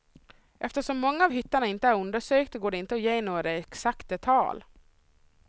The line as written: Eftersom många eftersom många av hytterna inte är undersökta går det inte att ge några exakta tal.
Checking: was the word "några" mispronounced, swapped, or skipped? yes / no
no